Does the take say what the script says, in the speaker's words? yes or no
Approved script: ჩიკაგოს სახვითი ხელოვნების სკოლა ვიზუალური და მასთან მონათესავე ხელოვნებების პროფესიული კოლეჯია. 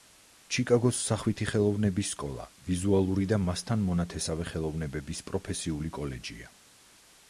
yes